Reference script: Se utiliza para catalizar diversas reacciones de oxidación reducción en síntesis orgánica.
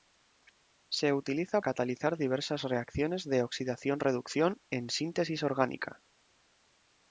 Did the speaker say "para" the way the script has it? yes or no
no